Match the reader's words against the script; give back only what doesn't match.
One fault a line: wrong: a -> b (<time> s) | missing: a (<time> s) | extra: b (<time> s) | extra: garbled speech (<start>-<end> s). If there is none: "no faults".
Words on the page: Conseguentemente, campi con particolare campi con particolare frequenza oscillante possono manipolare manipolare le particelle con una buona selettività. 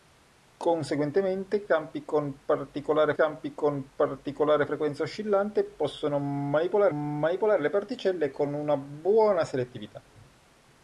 no faults